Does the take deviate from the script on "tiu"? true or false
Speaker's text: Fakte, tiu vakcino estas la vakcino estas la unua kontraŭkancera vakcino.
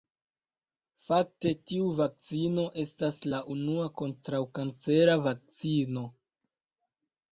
false